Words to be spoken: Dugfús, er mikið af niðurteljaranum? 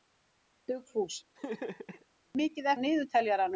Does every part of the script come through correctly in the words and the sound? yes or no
no